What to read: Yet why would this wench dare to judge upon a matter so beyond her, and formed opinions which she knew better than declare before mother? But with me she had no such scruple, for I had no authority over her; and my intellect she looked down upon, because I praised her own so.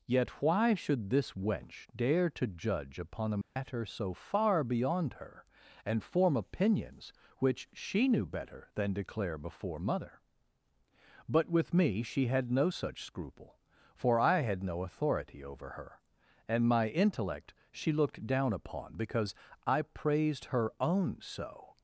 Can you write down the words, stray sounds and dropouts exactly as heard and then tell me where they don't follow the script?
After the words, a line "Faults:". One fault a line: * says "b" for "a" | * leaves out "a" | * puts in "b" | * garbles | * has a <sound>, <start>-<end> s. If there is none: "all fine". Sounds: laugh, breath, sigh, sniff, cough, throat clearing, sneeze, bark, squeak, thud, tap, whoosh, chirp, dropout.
Yet why should this wench dare to judge upon a matter so far beyond her, and form opinions which she knew better than declare before mother? But with me she had no such scruple, for I had no authority over her; and my intellect she looked down upon, because I praised her own so.
Faults:
* says "should" for "would"
* has a dropout, 3.4-3.6 s
* puts in "far"
* says "form" for "formed"